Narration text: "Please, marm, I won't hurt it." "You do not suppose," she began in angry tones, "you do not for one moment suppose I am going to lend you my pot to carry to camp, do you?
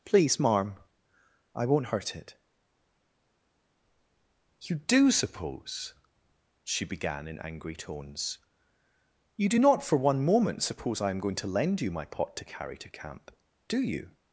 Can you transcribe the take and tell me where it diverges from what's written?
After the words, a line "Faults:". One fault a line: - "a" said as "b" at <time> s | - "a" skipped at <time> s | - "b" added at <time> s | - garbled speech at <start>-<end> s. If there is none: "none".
"Please, marm, I won't hurt it." "You do suppose," she began in angry tones, "you do not for one moment suppose I am going to lend you my pot to carry to camp, do you?
Faults:
- "not" skipped at 5.1 s